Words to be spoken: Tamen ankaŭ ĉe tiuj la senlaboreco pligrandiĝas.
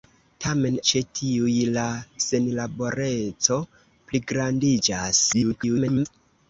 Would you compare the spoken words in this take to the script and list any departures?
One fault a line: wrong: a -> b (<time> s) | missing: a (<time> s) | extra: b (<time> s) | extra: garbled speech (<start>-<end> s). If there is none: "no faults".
missing: ankaŭ (0.8 s)
extra: garbled speech (5.3-6.1 s)